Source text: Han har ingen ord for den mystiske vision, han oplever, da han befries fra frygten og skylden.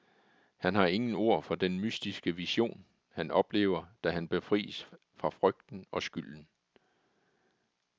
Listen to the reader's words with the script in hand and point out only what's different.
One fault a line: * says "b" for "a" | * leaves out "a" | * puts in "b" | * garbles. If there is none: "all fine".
all fine